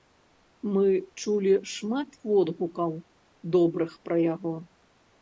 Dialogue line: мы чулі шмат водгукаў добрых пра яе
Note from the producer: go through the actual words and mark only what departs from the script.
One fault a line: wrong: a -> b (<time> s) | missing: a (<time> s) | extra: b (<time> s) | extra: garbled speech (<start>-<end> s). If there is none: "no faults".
wrong: яе -> яго (4.3 s)